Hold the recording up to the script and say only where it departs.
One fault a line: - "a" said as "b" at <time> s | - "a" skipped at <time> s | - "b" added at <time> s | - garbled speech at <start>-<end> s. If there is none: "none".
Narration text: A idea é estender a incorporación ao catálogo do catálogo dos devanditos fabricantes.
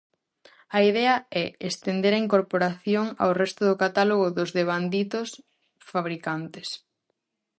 - "catálogo" said as "resto" at 3.4 s